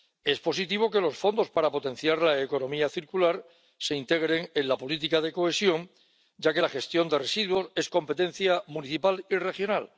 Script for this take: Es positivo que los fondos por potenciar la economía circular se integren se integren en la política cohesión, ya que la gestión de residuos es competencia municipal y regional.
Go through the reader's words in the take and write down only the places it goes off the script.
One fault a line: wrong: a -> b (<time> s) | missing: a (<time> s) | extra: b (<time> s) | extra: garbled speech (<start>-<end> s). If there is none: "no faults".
wrong: por -> para (1.5 s)
missing: se integren (4.5 s)
extra: de (5.2 s)